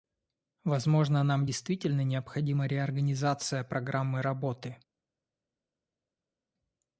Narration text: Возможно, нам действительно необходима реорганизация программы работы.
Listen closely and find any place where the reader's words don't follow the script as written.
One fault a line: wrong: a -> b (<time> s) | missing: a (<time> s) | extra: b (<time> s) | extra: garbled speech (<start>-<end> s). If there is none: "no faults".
no faults